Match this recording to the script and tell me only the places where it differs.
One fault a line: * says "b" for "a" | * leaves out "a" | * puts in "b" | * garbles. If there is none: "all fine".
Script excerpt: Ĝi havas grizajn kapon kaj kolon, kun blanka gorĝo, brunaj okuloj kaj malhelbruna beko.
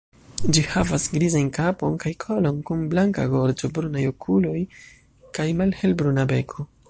all fine